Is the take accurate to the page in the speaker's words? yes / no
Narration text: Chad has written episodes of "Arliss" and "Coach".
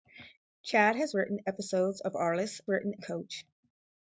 no